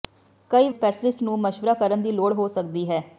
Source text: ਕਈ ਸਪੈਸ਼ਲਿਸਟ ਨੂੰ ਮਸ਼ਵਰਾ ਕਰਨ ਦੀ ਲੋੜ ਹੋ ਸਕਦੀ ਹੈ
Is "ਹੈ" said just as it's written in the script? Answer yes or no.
yes